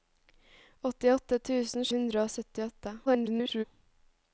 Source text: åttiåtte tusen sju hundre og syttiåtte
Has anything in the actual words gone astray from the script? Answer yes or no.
yes